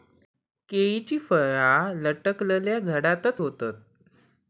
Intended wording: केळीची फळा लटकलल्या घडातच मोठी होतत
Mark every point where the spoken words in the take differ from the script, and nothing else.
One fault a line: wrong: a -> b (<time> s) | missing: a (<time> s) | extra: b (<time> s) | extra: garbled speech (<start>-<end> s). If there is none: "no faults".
missing: मोठी (3.4 s)